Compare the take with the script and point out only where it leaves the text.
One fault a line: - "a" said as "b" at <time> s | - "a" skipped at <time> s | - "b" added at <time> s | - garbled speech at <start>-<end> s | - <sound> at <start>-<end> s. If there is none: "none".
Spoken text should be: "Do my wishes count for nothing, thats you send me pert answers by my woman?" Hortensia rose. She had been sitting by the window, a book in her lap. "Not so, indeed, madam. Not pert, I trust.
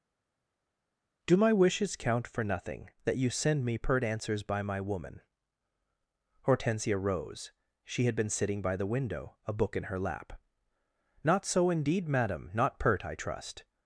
- "thats" said as "that" at 3.0 s